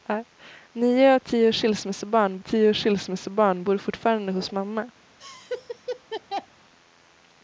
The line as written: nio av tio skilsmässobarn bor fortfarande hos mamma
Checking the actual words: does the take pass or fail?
fail